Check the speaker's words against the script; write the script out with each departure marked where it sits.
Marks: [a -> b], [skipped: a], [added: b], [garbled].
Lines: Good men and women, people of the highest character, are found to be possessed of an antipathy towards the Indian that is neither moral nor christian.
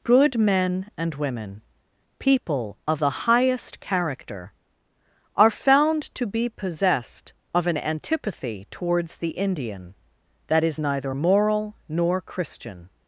Good men and women, people of the highest character, are found to be possessed of an antipathy towards the Indian that is neither moral nor christian.